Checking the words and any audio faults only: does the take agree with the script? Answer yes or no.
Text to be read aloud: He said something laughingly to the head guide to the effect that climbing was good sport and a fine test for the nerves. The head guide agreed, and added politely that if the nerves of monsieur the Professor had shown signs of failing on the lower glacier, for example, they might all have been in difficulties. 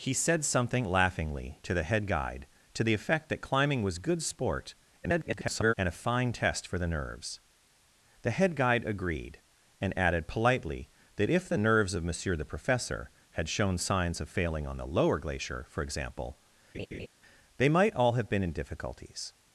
no